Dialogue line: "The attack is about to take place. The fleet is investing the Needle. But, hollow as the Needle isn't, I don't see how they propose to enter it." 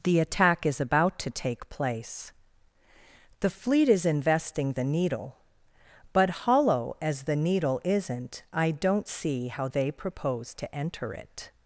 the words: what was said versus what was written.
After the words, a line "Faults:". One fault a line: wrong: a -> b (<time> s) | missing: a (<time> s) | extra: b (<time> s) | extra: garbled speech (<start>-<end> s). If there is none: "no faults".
"The attack is about to take place. The fleet is investing the Needle. But, hollow as the Needle isn't, I don't see how they propose to enter it."
Faults:
no faults